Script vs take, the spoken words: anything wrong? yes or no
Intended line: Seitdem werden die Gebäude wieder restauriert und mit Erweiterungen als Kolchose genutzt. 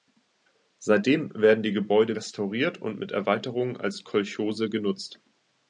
yes